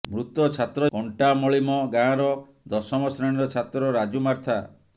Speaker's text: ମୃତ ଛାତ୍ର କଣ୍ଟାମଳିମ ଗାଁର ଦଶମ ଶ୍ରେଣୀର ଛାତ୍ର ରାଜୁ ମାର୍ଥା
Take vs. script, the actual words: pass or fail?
pass